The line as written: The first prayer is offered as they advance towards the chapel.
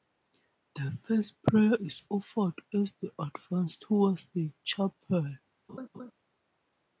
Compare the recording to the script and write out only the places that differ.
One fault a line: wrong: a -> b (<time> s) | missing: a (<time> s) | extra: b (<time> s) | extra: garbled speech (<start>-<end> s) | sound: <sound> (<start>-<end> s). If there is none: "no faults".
sound: laugh (5.7-6.1 s)